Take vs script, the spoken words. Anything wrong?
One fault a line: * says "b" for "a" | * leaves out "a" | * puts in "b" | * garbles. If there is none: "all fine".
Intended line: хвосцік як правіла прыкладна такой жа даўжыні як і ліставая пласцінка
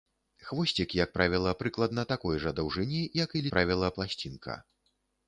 * says "правіла" for "ліставая"